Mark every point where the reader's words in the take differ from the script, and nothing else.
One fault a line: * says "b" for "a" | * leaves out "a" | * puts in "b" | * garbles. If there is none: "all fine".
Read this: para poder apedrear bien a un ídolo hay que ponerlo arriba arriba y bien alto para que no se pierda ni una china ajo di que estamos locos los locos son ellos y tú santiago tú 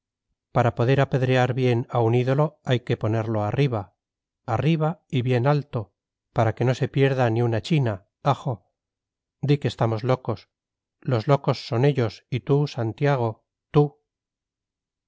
all fine